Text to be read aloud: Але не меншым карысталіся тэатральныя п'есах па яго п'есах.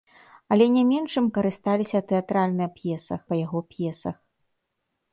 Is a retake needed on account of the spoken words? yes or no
no